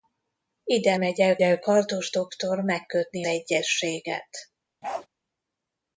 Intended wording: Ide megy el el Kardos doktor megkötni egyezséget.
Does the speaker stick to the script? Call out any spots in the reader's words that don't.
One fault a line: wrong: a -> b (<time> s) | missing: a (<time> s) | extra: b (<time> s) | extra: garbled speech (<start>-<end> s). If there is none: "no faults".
no faults